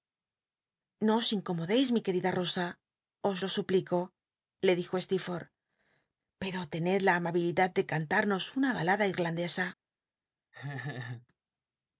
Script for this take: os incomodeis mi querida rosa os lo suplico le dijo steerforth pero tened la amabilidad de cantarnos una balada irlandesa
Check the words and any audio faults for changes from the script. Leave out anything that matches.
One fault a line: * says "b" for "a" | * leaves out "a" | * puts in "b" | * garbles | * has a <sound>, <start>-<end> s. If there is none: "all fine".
* has a laugh, 10.5-11.3 s